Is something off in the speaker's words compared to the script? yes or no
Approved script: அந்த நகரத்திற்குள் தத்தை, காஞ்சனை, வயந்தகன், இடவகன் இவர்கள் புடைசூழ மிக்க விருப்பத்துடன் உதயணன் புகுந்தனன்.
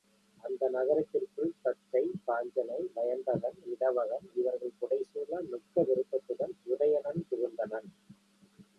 no